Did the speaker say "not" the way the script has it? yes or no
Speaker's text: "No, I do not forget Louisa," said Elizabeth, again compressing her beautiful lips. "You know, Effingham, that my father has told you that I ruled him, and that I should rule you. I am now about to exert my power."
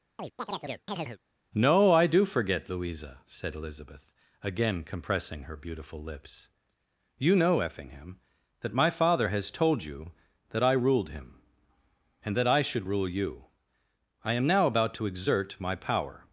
no